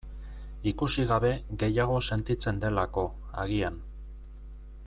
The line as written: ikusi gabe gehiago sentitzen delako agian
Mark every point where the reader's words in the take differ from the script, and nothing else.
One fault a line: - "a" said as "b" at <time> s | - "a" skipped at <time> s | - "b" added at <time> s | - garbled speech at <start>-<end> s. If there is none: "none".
none